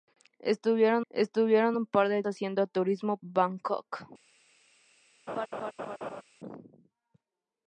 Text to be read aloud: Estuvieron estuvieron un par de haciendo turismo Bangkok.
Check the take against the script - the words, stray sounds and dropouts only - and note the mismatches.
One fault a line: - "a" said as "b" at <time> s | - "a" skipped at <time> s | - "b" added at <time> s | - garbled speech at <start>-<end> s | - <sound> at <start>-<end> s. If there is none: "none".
- laugh at 5.3-6.2 s